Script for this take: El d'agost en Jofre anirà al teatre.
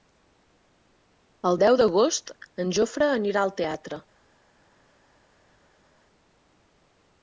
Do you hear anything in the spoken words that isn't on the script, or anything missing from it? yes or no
yes